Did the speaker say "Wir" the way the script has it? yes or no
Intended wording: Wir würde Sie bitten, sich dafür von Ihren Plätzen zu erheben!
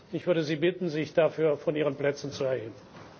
no